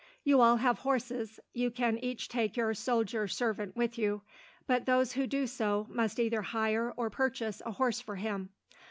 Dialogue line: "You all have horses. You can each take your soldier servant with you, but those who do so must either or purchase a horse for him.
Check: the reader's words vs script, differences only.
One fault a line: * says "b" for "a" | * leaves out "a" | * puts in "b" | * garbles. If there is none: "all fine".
* puts in "hire"